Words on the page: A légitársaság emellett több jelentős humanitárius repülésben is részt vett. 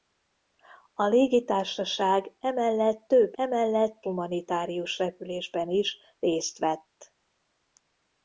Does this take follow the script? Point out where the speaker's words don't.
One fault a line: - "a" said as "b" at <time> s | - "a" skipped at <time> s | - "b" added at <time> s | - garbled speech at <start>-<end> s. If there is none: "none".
- "jelentős" said as "emellett" at 3.3 s